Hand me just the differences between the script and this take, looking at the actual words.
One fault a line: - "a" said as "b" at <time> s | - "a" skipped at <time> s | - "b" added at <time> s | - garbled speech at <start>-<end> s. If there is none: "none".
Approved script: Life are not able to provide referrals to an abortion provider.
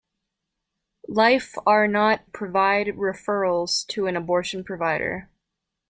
- "able to" skipped at 2.2 s